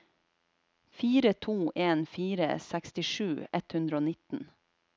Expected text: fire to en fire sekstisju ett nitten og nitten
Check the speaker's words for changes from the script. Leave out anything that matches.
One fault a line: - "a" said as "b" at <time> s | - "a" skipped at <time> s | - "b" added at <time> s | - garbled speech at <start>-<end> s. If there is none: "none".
- "nitten" said as "hundre" at 3.7 s